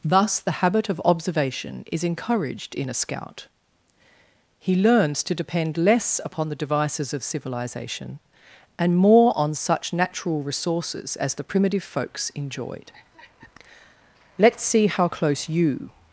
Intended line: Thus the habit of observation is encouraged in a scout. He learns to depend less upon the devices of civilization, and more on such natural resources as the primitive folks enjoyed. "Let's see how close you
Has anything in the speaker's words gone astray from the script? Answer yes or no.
no